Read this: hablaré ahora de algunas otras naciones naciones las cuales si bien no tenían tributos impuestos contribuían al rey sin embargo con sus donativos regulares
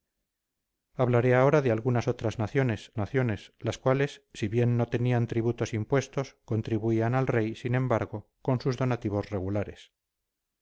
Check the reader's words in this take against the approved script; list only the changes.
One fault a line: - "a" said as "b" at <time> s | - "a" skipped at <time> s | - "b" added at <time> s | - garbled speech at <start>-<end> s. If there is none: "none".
none